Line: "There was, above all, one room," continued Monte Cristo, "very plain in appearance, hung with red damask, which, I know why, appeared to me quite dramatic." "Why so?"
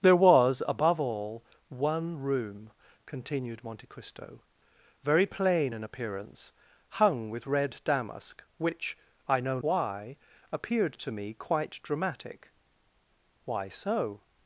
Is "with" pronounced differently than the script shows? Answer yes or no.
no